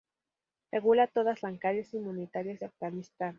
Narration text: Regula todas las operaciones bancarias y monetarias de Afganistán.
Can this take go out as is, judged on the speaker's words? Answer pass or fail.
fail